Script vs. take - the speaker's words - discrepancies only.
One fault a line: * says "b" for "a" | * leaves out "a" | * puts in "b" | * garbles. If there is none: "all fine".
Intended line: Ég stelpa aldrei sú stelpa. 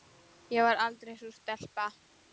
* says "var" for "stelpa"